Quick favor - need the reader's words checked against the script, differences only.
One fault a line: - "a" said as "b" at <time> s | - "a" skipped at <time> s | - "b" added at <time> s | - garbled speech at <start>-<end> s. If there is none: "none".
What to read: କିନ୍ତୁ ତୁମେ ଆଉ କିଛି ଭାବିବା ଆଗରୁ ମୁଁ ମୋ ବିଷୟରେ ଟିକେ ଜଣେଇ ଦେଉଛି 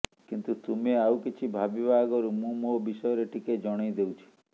none